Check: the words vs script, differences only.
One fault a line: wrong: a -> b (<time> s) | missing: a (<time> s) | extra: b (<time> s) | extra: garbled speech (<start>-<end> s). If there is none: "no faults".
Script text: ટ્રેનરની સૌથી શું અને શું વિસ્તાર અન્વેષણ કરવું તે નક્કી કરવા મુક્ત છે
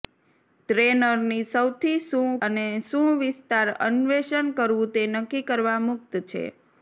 no faults